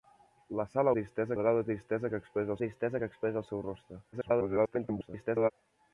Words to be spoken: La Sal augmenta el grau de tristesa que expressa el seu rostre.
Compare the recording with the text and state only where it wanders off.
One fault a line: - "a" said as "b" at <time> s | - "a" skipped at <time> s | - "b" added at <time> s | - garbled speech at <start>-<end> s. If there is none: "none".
- "augmenta" said as "tristesa" at 1.0 s
- "tristesa que expressa" added at 2.6 s
- garbled speech at 4.1-5.5 s